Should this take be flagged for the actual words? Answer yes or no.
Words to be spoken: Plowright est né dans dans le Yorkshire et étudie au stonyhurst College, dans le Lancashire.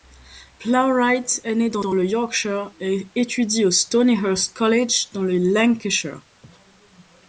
no